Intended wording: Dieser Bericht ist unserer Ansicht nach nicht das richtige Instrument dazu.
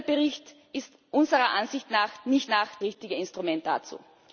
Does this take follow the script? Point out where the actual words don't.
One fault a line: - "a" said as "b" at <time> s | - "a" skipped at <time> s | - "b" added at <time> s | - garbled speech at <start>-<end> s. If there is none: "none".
- "das" said as "nach" at 2.5 s